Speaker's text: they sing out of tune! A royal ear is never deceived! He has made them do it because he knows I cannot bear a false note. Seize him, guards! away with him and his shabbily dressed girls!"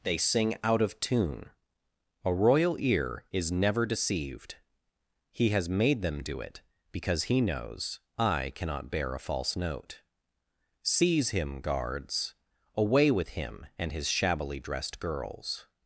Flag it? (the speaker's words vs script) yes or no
no